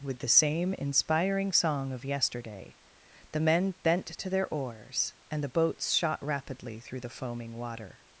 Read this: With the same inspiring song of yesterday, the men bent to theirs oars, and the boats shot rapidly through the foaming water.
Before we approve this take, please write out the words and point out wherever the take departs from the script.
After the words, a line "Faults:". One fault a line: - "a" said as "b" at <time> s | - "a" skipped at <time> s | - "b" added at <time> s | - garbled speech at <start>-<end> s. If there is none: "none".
With the same inspiring song of yesterday, the men bent to their oars, and the boats shot rapidly through the foaming water.
Faults:
- "theirs" said as "their" at 4.3 s